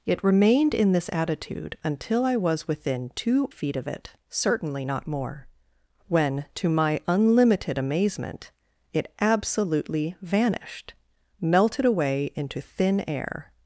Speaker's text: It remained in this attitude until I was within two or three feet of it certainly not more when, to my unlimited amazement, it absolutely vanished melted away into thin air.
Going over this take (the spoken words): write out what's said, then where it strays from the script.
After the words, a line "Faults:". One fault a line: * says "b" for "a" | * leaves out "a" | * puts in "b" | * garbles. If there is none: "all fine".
It remained in this attitude until I was within two feet of it certainly not more when, to my unlimited amazement, it absolutely vanished melted away into thin air.
Faults:
* leaves out "or three"